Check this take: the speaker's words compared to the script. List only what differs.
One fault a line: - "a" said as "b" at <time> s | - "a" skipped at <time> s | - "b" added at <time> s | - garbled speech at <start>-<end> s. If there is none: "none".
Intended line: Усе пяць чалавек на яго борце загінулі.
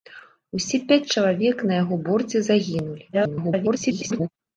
- garbled speech at 3.1-4.3 s